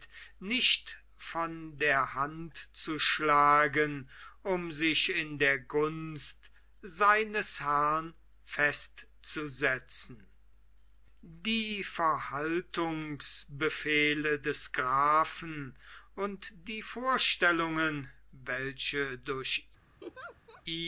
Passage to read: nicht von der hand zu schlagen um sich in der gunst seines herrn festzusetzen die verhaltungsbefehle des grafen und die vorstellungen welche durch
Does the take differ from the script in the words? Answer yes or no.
no